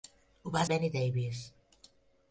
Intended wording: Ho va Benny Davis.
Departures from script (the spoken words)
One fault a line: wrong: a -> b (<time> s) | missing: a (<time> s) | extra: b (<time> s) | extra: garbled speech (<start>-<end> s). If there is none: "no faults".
no faults